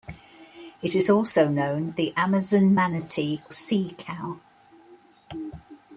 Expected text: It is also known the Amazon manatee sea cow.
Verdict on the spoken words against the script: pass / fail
pass